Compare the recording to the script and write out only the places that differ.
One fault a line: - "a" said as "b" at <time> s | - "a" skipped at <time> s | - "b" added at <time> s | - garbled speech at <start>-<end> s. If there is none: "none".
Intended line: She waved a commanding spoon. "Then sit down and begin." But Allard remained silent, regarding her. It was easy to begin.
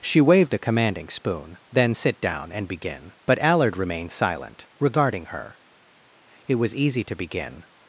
none